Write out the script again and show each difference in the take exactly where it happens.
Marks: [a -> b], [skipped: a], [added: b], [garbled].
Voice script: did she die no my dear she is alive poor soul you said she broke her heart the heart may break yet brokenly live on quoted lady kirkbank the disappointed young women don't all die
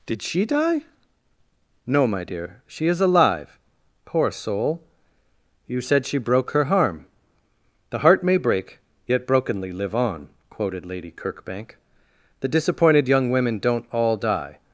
did she die no my dear she is alive poor soul you said she broke her [heart -> harm] the heart may break yet brokenly live on quoted lady kirkbank the disappointed young women don't all die